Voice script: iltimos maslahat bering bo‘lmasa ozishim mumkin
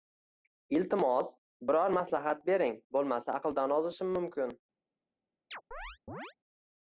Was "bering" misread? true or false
false